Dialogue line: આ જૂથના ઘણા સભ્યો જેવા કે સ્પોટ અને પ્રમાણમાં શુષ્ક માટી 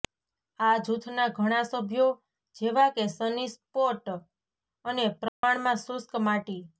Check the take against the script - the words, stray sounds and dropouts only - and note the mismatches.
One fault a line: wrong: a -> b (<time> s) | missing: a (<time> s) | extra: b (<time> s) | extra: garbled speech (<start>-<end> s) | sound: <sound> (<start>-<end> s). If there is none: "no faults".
extra: સની (3.1 s)
sound: dropout (5.3-5.4 s)